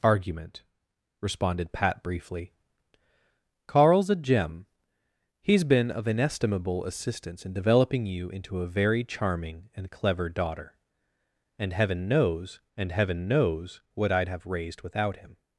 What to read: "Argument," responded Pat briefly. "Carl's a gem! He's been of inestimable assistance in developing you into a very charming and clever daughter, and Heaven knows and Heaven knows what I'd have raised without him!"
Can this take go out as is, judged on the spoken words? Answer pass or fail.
pass